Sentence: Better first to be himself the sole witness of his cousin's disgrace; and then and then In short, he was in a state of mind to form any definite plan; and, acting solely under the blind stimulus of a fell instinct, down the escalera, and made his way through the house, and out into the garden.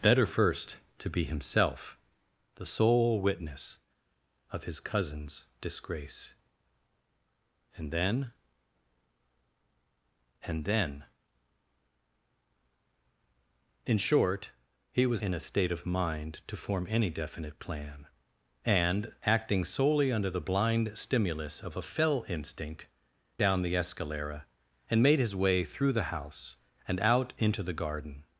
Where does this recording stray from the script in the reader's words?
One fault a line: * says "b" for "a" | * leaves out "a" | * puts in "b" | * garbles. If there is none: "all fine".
all fine